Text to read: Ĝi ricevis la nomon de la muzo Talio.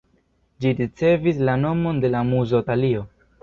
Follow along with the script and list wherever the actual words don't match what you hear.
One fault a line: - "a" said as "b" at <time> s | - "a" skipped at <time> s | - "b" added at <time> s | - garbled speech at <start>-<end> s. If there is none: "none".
none